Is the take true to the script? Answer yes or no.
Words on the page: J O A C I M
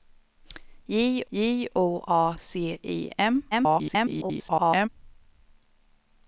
no